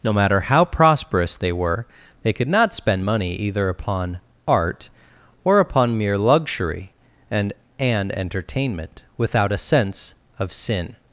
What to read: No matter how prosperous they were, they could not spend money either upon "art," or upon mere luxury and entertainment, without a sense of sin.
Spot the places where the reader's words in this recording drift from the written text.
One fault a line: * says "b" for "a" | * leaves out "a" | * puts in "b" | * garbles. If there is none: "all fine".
* puts in "and"